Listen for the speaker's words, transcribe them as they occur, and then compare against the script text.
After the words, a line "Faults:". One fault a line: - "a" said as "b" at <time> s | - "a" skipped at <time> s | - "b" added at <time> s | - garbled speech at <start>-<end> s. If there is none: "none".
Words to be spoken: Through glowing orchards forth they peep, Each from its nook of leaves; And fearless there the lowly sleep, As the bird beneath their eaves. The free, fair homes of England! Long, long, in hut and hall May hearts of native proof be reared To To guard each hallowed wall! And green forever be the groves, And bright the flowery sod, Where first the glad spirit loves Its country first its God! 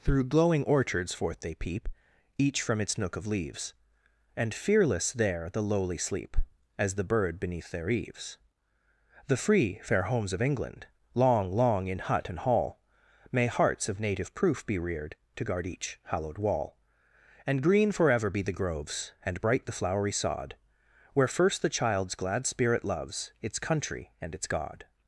Through glowing orchards forth they peep, Each from its nook of leaves; And fearless there the lowly sleep, As the bird beneath their eaves. The free, fair homes of England! Long, long, in hut and hall May hearts of native proof be reared To guard each hallowed wall! And green forever be the groves, And bright the flowery sod, Where first the child's glad spirit loves Its country and its God!
Faults:
- "To" skipped at 15.4 s
- "child's" added at 21.7 s
- "first" said as "and" at 24.2 s